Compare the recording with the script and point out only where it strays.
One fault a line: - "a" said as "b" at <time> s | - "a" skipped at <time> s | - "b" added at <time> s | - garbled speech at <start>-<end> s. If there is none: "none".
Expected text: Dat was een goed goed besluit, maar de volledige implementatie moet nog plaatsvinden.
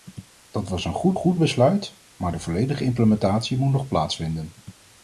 none